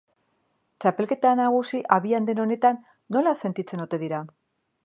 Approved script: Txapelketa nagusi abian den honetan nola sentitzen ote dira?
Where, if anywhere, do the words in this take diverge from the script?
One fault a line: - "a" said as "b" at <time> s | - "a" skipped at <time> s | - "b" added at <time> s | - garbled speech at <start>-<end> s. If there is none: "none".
none